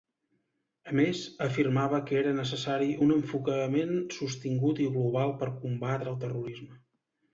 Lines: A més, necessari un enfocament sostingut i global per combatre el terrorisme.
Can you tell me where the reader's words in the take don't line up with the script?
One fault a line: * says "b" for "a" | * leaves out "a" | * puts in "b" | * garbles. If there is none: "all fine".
* puts in "afirmava que era"